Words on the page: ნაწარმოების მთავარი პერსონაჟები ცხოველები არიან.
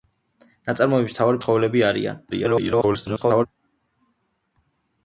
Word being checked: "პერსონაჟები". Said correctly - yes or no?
no